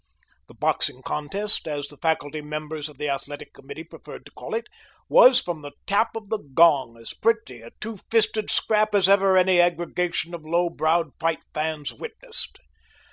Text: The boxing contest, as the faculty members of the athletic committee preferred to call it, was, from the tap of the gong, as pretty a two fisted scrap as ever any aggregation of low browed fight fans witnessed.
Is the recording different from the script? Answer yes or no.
no